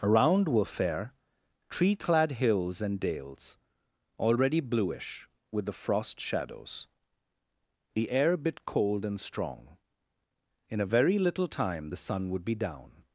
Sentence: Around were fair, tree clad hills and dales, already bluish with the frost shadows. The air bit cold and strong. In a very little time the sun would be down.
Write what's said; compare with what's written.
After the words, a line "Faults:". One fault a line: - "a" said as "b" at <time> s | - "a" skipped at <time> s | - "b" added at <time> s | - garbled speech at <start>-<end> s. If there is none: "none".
Around were fair, tree clad hills and dales, already bluish with the frost shadows. The air bit cold and strong. In a very little time the sun would be down.
Faults:
none